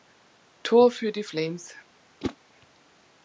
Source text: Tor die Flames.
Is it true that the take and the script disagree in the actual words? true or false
true